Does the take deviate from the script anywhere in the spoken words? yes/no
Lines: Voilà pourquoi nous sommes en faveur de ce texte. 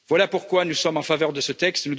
no